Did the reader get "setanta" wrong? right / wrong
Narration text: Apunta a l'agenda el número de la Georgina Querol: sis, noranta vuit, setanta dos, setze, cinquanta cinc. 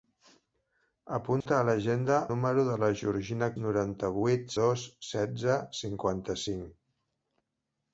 wrong